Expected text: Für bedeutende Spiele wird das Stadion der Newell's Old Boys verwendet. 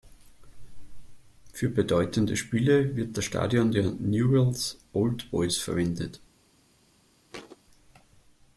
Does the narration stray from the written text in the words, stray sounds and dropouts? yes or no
yes